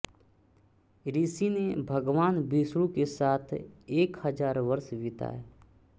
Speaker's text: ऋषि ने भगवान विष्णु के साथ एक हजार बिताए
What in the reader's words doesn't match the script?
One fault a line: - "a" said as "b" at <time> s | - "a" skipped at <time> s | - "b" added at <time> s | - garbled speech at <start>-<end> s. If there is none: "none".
- "वर्ष" added at 4.7 s